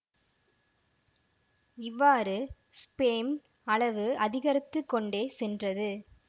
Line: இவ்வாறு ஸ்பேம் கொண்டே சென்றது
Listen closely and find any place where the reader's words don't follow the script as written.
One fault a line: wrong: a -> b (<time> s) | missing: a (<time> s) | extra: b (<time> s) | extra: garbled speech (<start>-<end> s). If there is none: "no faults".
extra: அளவு அதிகரித்து (3.7 s)